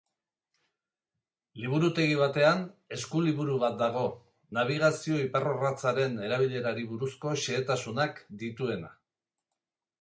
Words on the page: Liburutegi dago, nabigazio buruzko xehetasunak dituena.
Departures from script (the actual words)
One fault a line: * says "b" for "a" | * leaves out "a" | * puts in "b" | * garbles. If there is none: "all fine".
* puts in "batean eskuliburu bat"
* puts in "iparrorratzaren erabilerari"